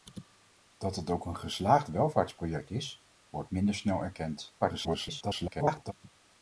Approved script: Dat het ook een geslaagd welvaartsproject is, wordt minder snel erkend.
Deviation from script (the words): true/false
true